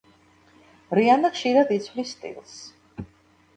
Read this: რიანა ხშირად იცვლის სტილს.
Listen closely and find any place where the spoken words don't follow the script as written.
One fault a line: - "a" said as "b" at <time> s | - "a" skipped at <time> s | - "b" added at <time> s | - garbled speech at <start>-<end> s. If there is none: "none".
none